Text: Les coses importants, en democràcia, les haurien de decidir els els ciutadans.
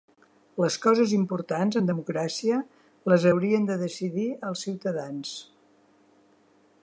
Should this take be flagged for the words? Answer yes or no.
yes